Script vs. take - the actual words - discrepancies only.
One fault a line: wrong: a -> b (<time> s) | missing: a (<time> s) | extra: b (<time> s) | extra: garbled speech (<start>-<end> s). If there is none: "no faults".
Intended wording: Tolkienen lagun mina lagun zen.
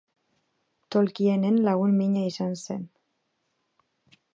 wrong: lagun -> izan (2.3 s)